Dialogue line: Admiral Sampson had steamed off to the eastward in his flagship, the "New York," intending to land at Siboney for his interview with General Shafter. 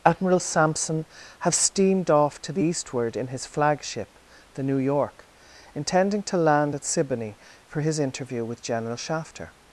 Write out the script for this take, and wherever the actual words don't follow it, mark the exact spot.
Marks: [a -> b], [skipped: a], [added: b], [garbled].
Admiral Sampson [had -> have] steamed off to the eastward in his flagship, the "New York," intending to land at Siboney for his interview with General Shafter.